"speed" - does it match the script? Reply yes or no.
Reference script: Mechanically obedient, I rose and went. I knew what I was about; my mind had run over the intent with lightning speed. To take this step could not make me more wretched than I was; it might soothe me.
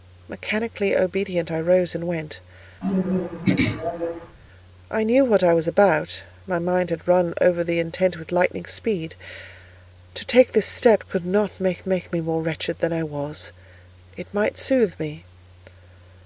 yes